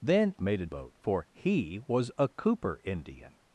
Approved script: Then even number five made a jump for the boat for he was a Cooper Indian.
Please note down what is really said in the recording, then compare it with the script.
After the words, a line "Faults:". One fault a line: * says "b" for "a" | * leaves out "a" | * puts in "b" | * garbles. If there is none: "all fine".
Then made a boat for he was a Cooper Indian.
Faults:
* leaves out "even number five"
* leaves out "jump for the"